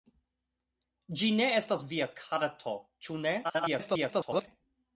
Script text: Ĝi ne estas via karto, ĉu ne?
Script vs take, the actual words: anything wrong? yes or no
yes